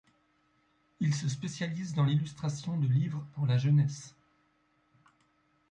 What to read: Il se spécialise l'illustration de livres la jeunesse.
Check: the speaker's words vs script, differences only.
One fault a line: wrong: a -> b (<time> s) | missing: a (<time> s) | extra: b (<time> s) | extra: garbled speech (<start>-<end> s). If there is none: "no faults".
extra: dans (1.9 s)
extra: pour (3.3 s)